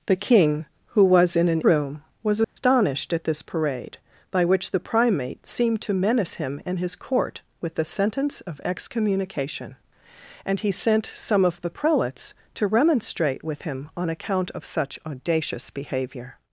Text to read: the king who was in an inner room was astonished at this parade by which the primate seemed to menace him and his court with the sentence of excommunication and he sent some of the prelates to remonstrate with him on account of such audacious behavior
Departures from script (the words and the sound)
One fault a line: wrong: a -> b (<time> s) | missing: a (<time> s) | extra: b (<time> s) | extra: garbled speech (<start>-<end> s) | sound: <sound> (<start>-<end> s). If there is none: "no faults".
missing: inner (1.6 s)
sound: dropout (2.4-2.6 s)